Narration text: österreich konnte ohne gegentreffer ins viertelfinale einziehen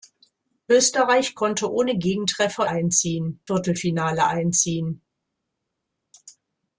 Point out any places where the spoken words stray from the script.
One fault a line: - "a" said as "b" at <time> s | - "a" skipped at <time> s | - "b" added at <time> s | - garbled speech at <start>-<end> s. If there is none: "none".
- "ins" said as "einziehen" at 2.6 s